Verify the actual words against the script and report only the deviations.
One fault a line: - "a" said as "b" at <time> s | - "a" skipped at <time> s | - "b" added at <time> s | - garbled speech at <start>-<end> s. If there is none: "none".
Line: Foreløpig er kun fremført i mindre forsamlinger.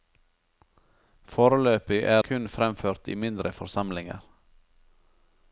none